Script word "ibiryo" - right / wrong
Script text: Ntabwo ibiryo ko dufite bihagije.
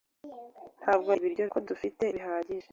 right